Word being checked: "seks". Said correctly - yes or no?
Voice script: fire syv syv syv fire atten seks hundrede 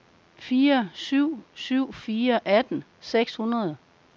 yes